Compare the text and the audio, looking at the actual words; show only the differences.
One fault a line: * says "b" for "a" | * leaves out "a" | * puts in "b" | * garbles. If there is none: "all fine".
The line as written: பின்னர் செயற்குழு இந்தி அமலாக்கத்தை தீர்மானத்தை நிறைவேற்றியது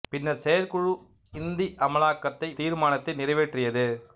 all fine